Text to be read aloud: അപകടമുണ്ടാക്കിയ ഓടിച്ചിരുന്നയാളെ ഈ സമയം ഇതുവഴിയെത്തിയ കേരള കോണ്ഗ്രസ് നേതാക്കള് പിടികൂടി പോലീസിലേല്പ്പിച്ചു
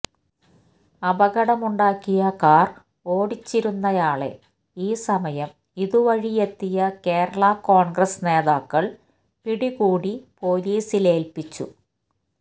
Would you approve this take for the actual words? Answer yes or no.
no